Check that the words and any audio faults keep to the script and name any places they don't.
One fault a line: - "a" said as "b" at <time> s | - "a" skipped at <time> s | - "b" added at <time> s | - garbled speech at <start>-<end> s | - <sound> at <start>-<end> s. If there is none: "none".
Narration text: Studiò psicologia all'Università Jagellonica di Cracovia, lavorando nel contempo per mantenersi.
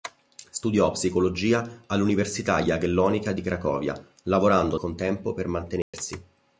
- "nel" skipped at 4.8 s
- dropout at 5.8-5.9 s